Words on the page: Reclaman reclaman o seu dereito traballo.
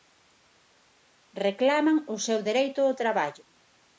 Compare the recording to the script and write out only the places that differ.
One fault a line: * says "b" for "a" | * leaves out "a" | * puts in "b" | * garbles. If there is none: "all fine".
* leaves out "reclaman"
* puts in "ao"